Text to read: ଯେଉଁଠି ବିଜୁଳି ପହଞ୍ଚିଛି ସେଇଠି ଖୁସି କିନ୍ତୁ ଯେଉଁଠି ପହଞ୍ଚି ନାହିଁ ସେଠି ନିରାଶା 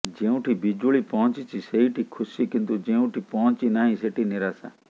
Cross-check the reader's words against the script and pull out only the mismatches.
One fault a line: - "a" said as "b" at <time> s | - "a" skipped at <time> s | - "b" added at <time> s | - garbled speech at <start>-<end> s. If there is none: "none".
none